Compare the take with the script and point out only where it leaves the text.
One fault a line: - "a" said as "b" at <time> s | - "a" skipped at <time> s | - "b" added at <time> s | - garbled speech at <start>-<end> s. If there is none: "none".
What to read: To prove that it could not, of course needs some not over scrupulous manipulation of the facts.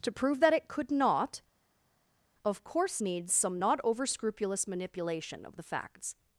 none